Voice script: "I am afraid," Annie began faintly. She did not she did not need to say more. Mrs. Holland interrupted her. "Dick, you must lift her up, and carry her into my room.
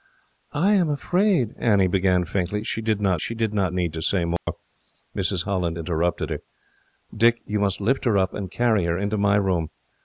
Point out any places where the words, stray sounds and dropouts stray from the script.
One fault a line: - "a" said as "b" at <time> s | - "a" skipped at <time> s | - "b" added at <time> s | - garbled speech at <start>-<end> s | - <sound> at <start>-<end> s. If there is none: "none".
- dropout at 4.4-4.5 s